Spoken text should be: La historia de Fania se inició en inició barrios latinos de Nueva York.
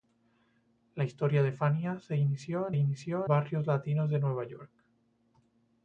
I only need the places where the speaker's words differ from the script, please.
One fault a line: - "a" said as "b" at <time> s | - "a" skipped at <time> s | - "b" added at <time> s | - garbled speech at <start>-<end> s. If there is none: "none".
none